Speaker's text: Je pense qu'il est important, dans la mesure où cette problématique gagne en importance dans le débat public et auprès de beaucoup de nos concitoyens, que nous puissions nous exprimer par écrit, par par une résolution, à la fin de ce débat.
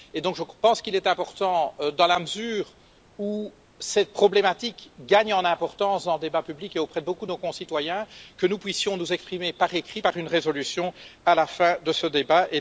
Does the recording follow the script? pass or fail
fail